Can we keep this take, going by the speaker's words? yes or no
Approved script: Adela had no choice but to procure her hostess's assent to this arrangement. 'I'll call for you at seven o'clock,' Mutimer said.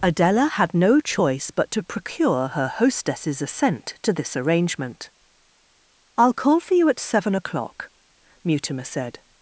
yes